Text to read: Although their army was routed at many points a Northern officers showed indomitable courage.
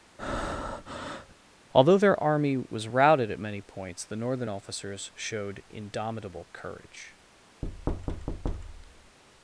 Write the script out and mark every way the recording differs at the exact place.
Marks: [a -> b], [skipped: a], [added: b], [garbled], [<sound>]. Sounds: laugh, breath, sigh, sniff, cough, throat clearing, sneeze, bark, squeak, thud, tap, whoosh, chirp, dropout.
[breath] Although their army was routed at many points [a -> the] Northern officers showed indomitable courage. [thud]